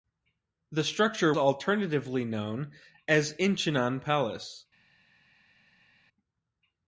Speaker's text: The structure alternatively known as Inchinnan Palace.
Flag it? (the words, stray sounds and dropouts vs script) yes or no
no